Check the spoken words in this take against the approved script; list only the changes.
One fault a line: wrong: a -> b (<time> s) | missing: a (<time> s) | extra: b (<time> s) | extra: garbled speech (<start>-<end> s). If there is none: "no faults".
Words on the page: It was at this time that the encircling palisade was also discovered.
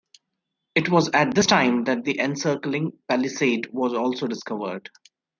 no faults